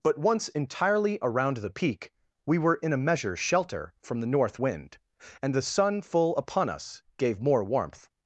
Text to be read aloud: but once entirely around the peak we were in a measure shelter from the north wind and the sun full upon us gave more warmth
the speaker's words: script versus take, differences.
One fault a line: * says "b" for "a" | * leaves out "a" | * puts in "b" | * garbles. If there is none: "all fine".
all fine